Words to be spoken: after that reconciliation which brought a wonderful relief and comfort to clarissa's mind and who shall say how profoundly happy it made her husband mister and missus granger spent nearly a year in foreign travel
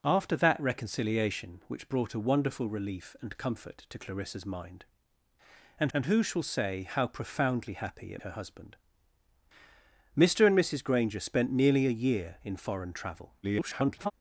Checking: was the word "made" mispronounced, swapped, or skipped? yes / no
yes